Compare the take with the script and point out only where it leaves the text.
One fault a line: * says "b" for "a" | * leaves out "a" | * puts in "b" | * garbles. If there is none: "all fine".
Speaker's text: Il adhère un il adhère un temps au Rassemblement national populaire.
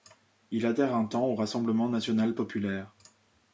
* leaves out "il adhère un"